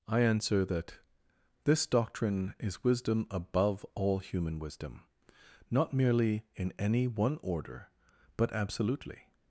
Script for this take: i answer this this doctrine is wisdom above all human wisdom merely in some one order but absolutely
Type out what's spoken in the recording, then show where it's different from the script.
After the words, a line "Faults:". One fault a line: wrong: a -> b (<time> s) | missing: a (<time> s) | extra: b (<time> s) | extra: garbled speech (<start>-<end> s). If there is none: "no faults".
i answer that this doctrine is wisdom above all human wisdom not merely in any one order but absolutely
Faults:
wrong: this -> that (0.7 s)
extra: not (5.7 s)
wrong: some -> any (6.8 s)